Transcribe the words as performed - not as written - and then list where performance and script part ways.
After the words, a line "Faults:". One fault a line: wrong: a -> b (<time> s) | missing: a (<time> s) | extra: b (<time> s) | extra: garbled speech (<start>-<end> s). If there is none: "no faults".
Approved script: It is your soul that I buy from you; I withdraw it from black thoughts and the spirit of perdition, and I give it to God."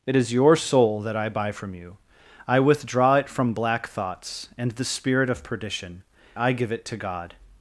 It is your soul that I buy from you; I withdraw it from black thoughts and the spirit of perdition, I give it to God."
Faults:
missing: and (6.0 s)